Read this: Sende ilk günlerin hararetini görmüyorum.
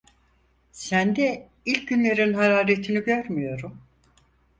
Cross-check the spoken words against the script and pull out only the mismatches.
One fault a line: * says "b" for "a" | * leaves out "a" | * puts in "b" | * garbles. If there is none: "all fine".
all fine